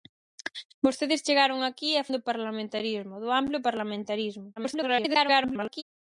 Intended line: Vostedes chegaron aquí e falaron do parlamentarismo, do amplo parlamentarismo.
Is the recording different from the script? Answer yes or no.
yes